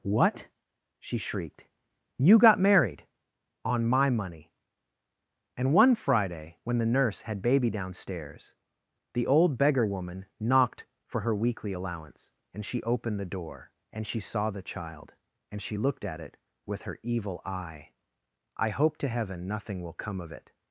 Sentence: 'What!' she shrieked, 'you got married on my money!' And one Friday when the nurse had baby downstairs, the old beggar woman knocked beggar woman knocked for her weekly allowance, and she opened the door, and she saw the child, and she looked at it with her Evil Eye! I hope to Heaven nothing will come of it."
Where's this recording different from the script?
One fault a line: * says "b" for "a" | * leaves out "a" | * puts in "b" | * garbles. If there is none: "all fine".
* leaves out "beggar woman knocked"